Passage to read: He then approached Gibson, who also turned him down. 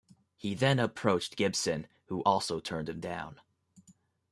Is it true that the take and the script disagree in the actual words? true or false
false